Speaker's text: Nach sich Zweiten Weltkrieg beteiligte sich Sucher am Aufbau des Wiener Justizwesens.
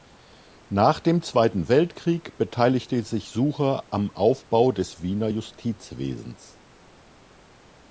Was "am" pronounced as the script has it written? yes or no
yes